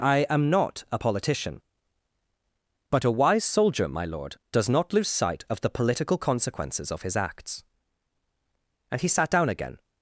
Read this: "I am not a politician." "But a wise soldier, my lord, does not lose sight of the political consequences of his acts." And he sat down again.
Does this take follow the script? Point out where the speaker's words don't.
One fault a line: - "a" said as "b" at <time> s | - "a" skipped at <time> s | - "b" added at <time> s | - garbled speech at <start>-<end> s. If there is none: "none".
none